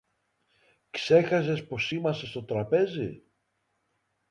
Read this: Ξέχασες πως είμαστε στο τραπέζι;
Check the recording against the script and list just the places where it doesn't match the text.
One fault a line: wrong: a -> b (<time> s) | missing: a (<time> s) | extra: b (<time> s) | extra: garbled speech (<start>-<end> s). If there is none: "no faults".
no faults